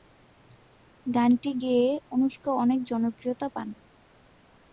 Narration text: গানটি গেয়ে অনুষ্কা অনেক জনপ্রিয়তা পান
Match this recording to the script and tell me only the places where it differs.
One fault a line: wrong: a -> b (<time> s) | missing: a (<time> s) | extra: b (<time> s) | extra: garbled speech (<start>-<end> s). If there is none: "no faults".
no faults